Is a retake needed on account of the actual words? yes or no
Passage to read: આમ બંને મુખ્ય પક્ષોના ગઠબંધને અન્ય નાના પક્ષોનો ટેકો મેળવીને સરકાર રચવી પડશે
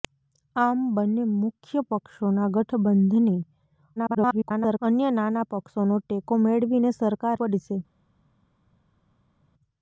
yes